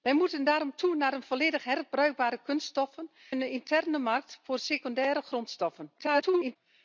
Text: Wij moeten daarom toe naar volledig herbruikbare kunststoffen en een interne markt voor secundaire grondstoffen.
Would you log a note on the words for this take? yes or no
yes